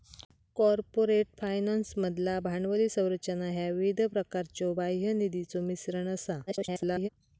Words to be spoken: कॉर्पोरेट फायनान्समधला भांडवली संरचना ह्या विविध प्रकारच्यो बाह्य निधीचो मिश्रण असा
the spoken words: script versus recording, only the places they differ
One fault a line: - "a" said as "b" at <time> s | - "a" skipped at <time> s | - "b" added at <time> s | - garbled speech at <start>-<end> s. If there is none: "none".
- garbled speech at 6.5-7.1 s